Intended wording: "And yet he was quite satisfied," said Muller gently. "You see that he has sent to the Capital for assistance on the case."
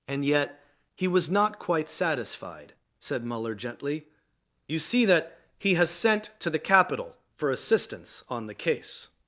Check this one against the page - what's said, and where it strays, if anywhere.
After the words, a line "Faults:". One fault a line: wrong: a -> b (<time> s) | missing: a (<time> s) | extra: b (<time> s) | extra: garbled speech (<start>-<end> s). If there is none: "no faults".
"And yet he was not quite satisfied," said Muller gently. "You see that he has sent to the Capital for assistance on the case."
Faults:
extra: not (1.3 s)